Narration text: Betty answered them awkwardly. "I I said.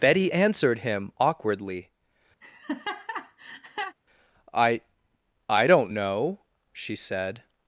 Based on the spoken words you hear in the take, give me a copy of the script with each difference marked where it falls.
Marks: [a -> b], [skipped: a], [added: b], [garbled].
Betty answered [them -> him] awkwardly. "I I [added: don't know she] said.